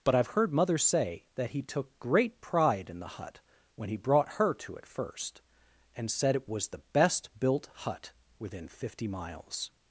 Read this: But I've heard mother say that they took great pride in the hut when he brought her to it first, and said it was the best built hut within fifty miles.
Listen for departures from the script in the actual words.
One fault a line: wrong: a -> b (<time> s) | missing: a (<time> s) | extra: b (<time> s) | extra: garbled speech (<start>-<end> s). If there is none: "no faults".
wrong: they -> he (1.5 s)